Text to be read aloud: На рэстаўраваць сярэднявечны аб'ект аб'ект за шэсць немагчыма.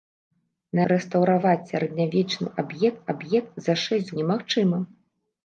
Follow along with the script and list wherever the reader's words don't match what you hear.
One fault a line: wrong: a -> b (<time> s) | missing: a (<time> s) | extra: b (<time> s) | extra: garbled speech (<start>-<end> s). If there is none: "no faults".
no faults